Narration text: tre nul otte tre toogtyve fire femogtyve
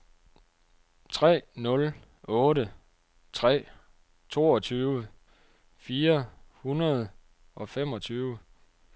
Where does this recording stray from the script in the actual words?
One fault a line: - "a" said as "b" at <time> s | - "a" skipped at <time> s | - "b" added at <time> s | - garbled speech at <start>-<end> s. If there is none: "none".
- "hundrede og" added at 6.5 s